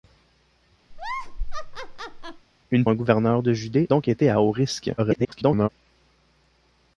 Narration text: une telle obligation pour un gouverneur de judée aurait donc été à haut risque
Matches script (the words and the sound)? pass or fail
fail